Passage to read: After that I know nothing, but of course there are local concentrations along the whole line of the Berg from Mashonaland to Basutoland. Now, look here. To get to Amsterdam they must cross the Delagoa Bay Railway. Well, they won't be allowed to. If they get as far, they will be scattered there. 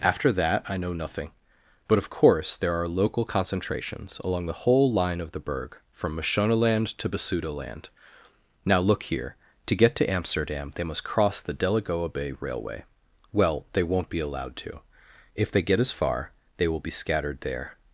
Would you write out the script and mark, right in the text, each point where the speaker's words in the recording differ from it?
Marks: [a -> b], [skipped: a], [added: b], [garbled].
After that I know nothing, but of course there are local concentrations along the whole line of the Berg from Mashonaland to Basutoland. Now, look here. To get to Amsterdam they must cross the Delagoa Bay Railway. Well, they won't be allowed to. If they get as far, they will be scattered there.